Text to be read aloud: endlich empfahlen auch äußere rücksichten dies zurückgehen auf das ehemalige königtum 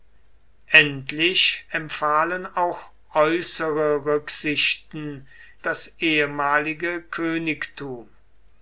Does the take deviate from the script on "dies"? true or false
true